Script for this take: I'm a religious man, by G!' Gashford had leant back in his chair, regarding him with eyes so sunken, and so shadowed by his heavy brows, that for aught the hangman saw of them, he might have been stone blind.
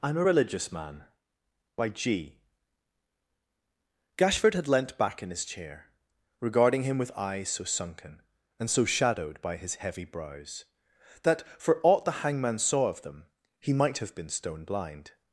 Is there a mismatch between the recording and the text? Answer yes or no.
no